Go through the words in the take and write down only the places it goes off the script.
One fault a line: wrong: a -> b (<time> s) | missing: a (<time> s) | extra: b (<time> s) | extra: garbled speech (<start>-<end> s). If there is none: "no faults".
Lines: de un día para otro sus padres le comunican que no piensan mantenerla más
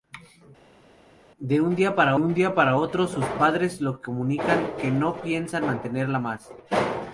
extra: un día para (2.2 s)